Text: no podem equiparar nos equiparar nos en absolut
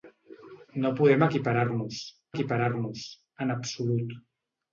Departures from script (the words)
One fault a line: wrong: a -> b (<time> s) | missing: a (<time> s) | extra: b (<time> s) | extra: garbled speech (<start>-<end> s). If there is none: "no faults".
no faults